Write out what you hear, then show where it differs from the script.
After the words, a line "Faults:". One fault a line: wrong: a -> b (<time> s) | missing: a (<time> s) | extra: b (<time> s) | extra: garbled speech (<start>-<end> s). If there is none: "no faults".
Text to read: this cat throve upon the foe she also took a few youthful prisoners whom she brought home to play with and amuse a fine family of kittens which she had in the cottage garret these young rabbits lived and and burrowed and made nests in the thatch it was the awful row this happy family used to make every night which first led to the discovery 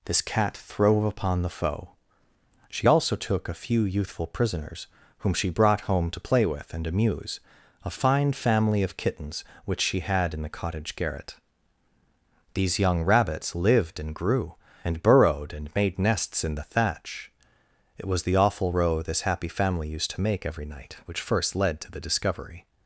this cat throve upon the foe she also took a few youthful prisoners whom she brought home to play with and amuse a fine family of kittens which she had in the cottage garret these young rabbits lived and grew and burrowed and made nests in the thatch it was the awful row this happy family used to make every night which first led to the discovery
Faults:
extra: grew (14.1 s)